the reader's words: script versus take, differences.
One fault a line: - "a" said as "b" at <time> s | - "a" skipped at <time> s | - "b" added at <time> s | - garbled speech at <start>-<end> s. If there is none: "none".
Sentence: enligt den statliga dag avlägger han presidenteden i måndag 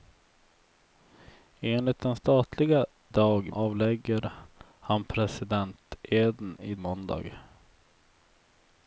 none